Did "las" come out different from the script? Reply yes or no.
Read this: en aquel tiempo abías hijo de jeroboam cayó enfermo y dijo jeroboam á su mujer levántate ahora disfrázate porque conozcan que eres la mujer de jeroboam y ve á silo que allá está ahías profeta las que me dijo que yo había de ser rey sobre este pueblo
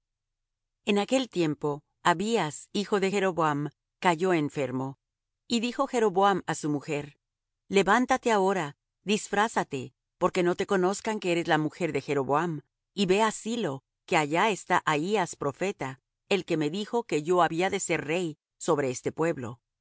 yes